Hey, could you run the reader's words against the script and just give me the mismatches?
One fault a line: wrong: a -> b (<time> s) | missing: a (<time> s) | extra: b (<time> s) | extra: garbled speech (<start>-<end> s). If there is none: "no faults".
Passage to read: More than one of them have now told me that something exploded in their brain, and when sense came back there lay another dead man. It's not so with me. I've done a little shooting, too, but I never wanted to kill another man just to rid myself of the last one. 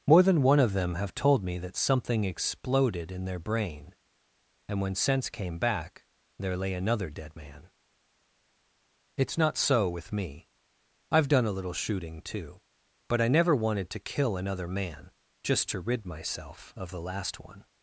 missing: now (1.1 s)